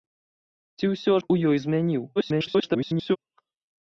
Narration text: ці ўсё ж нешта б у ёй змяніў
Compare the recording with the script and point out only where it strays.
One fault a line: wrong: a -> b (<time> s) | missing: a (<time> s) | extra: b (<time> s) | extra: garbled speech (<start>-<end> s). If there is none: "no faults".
missing: ж нешта (1.1 s)
extra: garbled speech (2.2-3.2 s)